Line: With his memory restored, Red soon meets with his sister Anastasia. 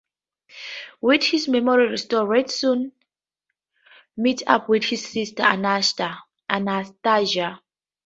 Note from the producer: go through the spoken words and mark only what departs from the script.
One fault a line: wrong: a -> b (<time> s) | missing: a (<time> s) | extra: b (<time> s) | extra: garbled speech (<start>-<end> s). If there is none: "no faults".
extra: up (4.5 s)